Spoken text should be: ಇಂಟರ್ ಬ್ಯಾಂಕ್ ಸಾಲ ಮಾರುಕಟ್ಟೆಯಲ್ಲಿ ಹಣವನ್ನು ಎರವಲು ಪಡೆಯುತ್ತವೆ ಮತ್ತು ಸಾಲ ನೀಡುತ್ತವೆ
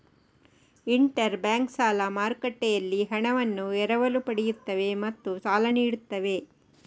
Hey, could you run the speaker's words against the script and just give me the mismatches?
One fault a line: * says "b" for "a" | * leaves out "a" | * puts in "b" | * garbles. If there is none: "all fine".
all fine